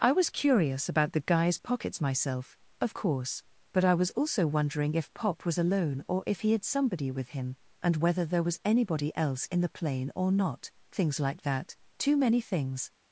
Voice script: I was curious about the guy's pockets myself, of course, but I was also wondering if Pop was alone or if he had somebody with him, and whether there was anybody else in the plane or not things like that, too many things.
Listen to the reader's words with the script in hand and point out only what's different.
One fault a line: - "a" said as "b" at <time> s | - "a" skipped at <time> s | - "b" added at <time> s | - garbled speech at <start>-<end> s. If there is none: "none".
none